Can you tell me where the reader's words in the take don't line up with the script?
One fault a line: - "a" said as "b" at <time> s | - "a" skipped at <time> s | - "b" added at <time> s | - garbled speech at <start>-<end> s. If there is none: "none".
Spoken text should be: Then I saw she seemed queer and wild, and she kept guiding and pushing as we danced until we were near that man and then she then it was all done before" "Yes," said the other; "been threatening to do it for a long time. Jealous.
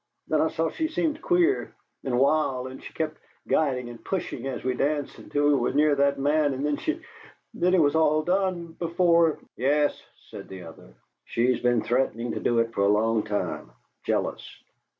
- "she's" added at 11.2 s